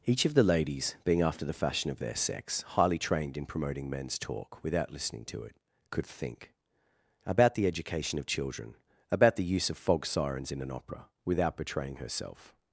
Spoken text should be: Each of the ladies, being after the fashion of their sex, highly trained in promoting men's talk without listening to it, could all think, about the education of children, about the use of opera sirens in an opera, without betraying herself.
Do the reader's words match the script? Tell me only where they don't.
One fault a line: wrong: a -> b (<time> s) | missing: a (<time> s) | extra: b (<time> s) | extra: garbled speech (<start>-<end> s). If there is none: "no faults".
missing: all (6.1 s)
wrong: opera -> fog (9.8 s)